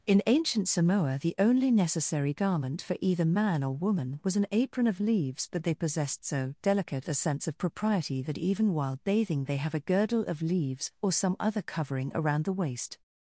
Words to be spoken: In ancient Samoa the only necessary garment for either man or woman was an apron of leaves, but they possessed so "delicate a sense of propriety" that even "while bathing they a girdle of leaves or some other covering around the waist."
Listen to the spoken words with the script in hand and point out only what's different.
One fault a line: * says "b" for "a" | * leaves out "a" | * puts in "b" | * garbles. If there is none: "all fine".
* puts in "have"